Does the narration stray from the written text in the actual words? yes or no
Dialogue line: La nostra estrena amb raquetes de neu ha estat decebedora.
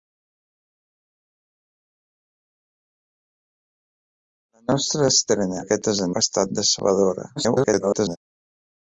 yes